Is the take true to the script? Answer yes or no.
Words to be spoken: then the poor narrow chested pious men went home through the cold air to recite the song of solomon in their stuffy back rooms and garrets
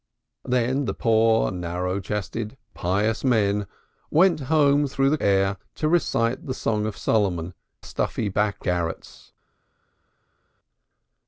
no